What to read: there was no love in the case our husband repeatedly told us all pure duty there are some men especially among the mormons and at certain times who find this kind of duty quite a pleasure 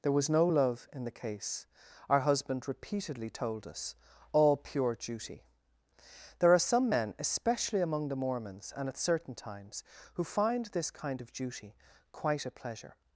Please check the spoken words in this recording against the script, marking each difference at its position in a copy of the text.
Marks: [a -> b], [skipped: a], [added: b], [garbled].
there was no love in the case our husband repeatedly told us all pure duty there are some men especially among the mormons and at certain times who find this kind of duty quite a pleasure